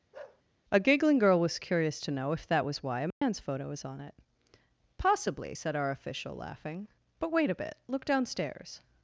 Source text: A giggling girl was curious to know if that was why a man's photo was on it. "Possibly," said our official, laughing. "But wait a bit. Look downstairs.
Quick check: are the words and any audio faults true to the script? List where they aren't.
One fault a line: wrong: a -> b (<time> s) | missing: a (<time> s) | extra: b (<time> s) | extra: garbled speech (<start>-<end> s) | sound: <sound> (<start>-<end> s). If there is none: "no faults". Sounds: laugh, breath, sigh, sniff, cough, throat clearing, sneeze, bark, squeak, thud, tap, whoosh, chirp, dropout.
sound: bark (0.1-0.4 s)
sound: dropout (3.1-3.2 s)